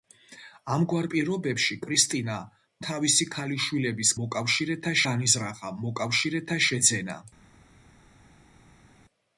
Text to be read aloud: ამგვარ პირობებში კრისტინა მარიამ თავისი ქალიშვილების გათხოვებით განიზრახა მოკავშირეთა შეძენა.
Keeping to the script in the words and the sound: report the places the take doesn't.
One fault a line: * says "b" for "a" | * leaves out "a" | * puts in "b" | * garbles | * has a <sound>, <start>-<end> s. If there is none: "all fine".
* leaves out "მარიამ"
* says "მოკავშირეთა" for "გათხოვებით"